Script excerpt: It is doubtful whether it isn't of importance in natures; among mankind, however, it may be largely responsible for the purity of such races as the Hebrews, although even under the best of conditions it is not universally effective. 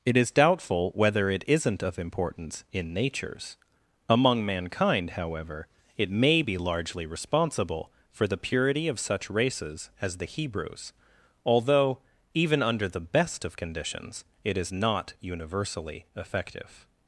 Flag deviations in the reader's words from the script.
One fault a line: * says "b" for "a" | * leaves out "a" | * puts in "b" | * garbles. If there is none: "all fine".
all fine